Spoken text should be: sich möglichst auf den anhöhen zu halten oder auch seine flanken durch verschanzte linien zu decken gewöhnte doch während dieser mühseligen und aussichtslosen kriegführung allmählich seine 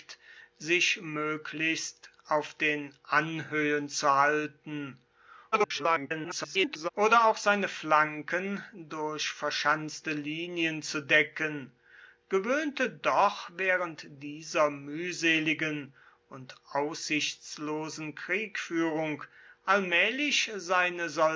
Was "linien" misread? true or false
false